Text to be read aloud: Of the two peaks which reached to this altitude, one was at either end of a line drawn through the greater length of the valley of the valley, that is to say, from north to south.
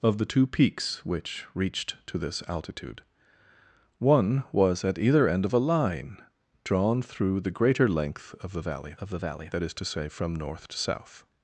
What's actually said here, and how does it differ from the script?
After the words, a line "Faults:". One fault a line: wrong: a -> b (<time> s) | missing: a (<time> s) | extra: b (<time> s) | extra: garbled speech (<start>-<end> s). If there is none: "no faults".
Of the two peaks which reached to this altitude, one was at either end of a line drawn through the greater length of the valley of the valley, that is to say, from north to south.
Faults:
no faults